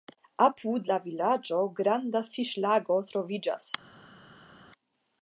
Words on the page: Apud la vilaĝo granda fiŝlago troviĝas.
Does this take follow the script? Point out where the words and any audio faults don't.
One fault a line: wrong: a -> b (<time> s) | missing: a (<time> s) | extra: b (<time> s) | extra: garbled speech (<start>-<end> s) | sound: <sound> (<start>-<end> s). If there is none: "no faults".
no faults